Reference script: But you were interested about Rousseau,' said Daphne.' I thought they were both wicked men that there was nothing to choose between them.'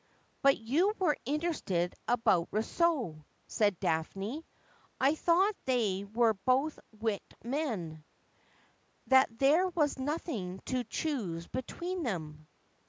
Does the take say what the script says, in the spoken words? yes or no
yes